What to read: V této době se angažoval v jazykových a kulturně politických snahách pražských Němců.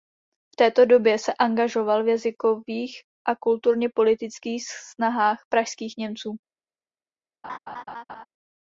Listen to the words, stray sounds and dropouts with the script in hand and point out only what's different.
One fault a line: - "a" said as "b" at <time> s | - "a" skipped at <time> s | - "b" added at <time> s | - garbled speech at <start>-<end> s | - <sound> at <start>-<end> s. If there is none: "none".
- laugh at 7.4-8.3 s